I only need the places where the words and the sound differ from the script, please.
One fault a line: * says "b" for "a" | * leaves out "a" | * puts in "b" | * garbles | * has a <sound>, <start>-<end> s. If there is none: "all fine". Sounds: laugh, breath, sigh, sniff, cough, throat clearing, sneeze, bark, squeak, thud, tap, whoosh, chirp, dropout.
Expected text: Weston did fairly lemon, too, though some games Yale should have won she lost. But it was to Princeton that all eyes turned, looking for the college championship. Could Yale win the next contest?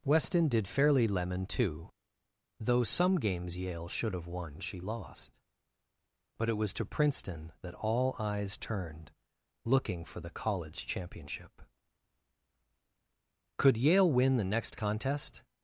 all fine